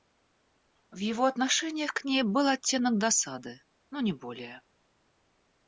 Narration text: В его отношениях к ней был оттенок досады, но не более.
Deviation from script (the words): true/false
false